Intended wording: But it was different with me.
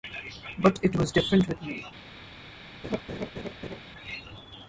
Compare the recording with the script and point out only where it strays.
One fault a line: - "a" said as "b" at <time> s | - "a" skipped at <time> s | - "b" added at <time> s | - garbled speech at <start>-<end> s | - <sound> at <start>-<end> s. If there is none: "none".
- laugh at 2.8-3.8 s